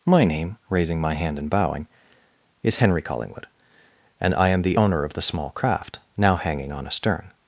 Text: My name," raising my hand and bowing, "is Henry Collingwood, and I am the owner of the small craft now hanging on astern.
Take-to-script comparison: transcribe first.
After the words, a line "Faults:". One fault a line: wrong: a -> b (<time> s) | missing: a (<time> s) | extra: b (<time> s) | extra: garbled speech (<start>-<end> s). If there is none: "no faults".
My name," raising my hand and bowing, "is Henry Collingwood, and I am the owner of the small craft now hanging on astern.
Faults:
no faults